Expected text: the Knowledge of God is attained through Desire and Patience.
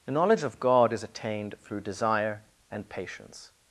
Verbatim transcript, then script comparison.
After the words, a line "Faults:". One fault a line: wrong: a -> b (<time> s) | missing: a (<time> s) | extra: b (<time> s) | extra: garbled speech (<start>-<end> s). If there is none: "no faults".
the Knowledge of God is attained through Desire and Patience.
Faults:
no faults